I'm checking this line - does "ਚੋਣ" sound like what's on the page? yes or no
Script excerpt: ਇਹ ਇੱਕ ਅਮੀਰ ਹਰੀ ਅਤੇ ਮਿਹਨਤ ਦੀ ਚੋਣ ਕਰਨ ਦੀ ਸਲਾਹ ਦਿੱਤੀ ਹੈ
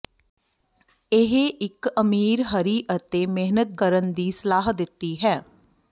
no